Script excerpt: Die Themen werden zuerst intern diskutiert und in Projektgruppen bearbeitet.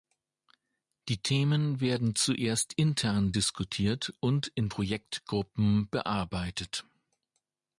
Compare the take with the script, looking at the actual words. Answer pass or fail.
pass